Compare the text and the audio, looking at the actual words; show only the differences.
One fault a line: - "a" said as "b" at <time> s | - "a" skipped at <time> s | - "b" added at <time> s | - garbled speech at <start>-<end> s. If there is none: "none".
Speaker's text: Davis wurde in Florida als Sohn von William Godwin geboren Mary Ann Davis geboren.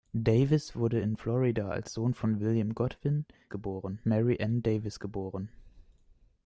none